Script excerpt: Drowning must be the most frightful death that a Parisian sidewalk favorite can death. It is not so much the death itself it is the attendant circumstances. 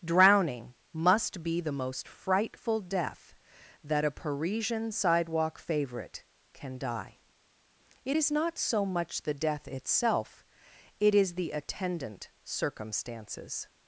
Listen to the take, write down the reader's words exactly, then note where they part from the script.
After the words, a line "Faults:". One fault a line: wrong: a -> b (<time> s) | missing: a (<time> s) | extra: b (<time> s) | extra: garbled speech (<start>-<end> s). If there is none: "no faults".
Drowning must be the most frightful death that a Parisian sidewalk favorite can die. It is not so much the death itself it is the attendant circumstances.
Faults:
wrong: death -> die (6.8 s)